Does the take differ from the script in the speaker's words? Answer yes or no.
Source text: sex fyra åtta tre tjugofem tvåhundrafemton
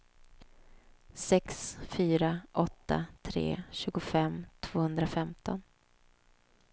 no